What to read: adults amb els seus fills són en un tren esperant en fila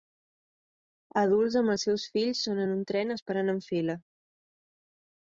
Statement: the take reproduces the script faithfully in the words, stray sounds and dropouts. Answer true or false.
true